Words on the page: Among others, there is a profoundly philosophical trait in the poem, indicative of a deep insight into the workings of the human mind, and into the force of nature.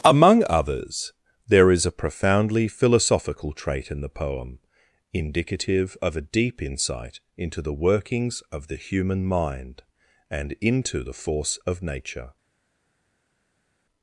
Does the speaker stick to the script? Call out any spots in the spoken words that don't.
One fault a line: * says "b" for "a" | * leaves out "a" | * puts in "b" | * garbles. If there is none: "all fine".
all fine